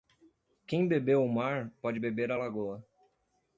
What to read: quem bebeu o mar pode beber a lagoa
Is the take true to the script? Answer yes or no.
yes